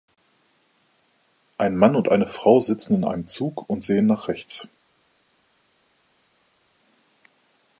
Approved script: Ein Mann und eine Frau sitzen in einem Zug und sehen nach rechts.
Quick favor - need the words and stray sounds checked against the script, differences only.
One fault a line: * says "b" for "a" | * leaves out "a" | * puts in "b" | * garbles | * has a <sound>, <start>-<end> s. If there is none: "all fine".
all fine